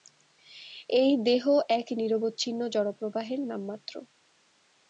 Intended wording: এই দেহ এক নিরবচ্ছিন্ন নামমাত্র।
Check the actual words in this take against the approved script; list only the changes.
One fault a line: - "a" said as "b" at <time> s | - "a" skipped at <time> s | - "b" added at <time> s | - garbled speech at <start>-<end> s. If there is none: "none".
- "জড়প্রবাহের" added at 2.7 s